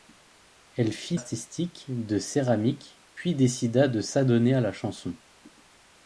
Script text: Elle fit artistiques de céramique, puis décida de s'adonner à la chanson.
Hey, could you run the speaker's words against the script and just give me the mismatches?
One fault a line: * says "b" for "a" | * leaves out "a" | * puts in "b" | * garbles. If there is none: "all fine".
all fine